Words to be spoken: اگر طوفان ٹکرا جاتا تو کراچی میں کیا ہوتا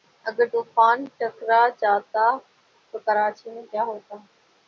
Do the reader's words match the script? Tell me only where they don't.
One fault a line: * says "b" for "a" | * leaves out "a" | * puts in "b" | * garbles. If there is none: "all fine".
all fine